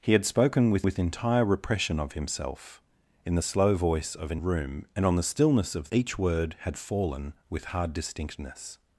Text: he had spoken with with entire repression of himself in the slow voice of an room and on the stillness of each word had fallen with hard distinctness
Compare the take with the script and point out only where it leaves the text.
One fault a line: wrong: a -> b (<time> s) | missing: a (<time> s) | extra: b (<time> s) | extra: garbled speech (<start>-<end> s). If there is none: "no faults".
no faults